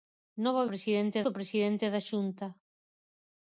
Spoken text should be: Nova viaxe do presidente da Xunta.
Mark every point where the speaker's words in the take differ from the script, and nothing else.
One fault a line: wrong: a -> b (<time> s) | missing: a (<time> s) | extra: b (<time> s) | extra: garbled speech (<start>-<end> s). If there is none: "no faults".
wrong: viaxe -> presidente (0.7 s)